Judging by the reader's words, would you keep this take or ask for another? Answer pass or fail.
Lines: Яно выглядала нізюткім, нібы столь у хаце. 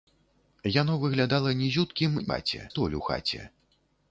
fail